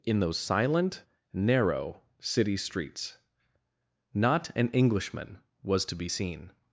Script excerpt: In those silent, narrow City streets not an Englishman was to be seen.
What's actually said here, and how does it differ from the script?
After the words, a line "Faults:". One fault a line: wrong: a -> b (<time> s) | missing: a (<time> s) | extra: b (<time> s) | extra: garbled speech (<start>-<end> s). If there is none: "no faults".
In those silent, narrow City streets not an Englishman was to be seen.
Faults:
no faults